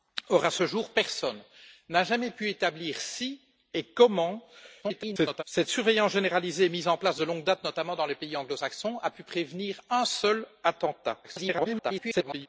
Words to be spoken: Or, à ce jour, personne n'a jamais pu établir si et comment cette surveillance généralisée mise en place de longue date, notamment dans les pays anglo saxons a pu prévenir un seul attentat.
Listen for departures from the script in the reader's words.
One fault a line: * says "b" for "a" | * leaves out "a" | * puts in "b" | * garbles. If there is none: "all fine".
* garbles
* garbles